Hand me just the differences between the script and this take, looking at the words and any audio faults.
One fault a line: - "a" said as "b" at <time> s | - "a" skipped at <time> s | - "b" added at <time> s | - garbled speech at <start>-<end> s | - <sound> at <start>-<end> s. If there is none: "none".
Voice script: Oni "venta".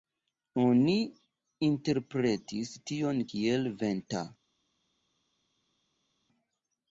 - "interpretis tion kiel" added at 1.7 s